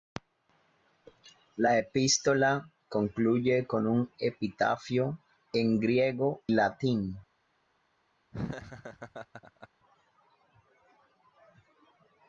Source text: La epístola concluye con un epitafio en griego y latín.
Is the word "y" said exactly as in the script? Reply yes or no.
no